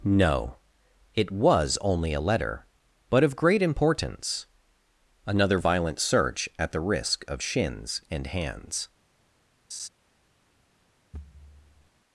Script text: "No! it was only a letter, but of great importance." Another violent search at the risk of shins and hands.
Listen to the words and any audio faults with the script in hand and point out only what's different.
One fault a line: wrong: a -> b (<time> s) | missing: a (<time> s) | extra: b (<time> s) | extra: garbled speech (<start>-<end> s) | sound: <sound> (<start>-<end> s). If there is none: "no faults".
sound: laugh (9.7-9.9 s)
sound: thud (11.1-11.9 s)